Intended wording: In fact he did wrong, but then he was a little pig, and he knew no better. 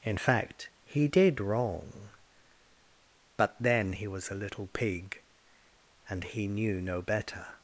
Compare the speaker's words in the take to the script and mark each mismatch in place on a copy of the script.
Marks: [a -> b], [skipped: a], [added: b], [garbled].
In fact he did wrong, but then he was a little pig, and he knew no better.